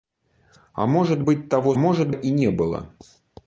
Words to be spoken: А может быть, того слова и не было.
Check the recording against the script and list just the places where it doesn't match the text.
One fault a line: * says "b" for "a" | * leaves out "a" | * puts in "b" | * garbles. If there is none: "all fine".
* says "может" for "слова"